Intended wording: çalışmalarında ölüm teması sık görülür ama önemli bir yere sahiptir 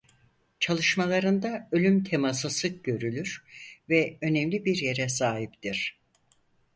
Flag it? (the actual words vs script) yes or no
yes